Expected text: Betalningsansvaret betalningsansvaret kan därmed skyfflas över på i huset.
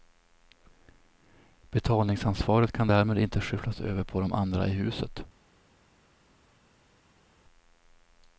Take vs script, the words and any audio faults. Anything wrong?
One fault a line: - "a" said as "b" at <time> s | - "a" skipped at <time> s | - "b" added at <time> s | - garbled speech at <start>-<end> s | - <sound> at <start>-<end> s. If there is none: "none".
- "betalningsansvaret" skipped at 2.7 s
- "inte" added at 3.2 s
- "de andra" added at 4.2 s